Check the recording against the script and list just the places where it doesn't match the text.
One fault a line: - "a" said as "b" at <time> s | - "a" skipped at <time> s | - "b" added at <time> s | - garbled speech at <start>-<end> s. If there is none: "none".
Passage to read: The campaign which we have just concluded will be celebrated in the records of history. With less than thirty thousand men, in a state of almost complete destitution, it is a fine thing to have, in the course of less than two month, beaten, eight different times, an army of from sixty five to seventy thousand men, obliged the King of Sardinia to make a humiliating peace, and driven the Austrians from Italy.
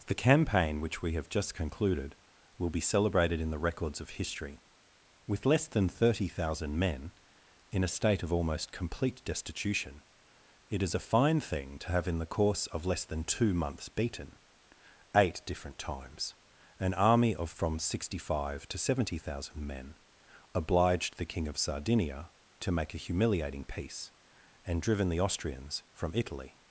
- "month" said as "months" at 13.5 s